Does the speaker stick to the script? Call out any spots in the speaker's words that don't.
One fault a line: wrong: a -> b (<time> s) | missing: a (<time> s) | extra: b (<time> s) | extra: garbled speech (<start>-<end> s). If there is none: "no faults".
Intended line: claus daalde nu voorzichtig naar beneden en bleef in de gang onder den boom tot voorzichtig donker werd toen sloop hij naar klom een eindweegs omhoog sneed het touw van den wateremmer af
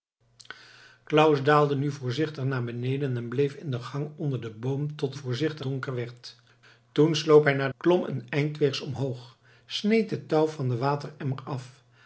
no faults